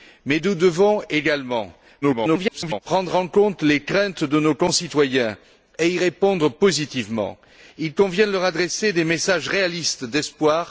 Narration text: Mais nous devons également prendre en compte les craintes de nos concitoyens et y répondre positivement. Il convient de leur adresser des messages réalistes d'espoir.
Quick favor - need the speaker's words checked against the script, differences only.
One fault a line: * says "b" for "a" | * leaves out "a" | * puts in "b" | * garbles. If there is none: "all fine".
* garbles